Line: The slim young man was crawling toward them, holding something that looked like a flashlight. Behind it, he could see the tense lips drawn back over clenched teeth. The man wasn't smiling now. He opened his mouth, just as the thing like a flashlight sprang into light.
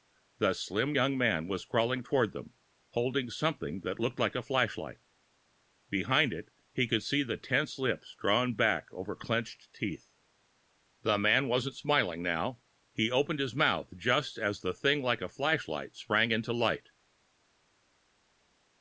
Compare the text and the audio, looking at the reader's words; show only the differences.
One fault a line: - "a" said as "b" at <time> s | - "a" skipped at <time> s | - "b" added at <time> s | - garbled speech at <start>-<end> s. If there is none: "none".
none